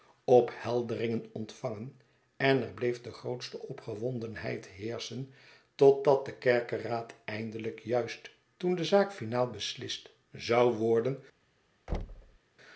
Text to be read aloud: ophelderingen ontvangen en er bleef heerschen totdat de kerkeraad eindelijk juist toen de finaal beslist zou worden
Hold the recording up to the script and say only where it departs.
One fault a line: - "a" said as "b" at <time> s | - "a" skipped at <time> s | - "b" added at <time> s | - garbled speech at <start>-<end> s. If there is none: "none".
- "de grootste opgewondenheid" added at 3.0 s
- "zaak" added at 8.8 s